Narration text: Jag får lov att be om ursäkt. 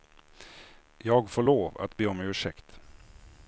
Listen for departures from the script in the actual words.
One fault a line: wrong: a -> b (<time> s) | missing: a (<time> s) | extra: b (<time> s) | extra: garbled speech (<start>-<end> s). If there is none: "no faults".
no faults